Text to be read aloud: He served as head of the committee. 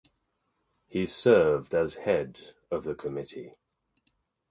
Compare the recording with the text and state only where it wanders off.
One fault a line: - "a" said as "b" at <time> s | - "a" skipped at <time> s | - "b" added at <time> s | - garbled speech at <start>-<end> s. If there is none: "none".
none